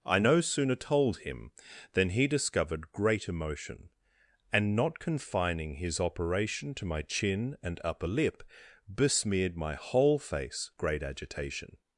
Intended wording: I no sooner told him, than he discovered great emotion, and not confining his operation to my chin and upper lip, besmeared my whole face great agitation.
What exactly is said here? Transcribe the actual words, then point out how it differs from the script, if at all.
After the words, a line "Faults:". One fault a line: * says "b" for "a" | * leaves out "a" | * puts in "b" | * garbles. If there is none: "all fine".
I no sooner told him, than he discovered great emotion, and not confining his operation to my chin and upper lip, besmeared my whole face great agitation.
Faults:
all fine